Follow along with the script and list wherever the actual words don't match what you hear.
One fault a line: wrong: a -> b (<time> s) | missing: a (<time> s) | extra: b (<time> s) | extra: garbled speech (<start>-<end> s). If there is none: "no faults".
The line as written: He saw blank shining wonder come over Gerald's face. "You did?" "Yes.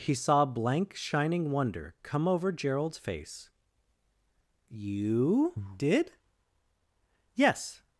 no faults